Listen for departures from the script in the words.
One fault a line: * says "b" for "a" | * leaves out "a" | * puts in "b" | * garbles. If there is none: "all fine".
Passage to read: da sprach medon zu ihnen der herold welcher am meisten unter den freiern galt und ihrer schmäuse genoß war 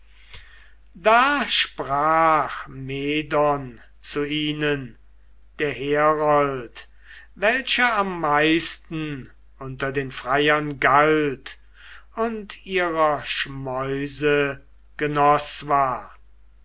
all fine